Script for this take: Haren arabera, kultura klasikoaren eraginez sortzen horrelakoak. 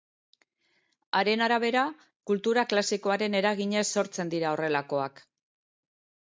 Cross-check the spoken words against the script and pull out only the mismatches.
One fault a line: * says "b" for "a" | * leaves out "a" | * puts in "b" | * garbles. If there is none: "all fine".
* puts in "dira"